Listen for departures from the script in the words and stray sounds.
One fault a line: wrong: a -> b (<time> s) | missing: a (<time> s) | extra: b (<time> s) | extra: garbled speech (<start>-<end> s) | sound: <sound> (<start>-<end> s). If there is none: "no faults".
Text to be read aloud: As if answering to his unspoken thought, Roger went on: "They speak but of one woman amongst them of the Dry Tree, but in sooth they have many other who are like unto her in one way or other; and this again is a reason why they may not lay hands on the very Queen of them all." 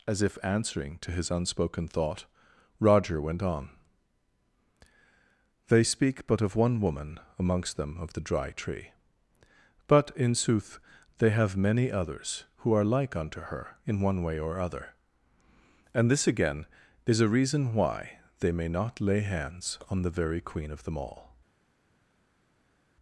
wrong: other -> others (11.9 s)